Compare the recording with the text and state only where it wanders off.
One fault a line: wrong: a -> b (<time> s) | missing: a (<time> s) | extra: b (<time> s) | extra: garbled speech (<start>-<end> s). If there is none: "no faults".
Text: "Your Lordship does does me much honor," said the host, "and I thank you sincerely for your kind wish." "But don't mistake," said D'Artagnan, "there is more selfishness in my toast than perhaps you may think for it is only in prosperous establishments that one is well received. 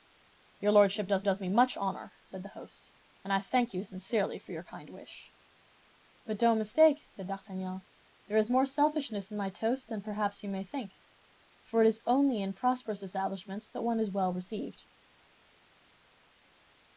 no faults